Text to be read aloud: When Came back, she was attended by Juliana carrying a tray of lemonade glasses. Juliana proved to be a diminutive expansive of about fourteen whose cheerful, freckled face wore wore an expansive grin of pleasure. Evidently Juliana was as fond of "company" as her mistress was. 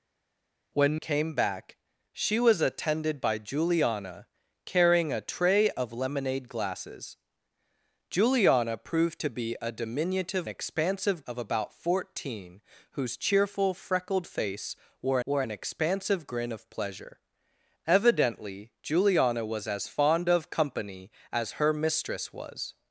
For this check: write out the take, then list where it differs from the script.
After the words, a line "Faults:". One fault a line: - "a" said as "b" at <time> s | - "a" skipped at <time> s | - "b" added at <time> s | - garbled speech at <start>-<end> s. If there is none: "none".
When Came back, she was attended by Juliana carrying a tray of lemonade glasses. Juliana proved to be a diminutive expansive of about fourteen whose cheerful, freckled face wore wore an expansive grin of pleasure. Evidently Juliana was as fond of "company" as her mistress was.
Faults:
none